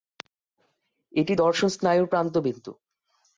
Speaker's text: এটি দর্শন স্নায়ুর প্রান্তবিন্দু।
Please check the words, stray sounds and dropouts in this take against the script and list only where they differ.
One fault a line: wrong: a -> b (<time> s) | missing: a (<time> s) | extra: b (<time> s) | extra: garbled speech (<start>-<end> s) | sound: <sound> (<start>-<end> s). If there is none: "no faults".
no faults